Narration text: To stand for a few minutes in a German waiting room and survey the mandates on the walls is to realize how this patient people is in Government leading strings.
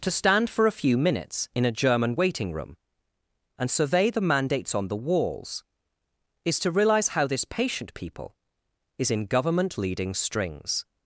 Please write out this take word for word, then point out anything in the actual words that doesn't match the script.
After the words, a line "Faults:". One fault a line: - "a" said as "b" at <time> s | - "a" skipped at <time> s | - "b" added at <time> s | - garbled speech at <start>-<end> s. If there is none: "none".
To stand for a few minutes in a German waiting room and survey the mandates on the walls is to realize how this patient people is in Government leading strings.
Faults:
none